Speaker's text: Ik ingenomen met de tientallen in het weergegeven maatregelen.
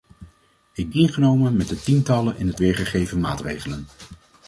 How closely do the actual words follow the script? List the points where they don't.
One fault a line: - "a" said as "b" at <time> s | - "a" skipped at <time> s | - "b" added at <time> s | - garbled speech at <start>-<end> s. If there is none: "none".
none